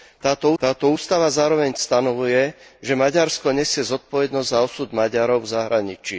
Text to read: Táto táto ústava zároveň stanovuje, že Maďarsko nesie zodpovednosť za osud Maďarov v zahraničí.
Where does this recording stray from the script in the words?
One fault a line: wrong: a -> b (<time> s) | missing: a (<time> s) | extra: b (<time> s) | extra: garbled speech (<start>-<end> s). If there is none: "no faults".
no faults